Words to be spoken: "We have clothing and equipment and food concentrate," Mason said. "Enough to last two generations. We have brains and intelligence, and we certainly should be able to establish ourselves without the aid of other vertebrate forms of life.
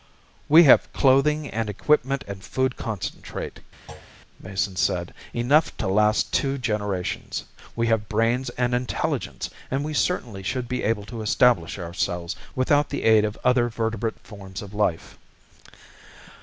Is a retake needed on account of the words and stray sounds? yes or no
yes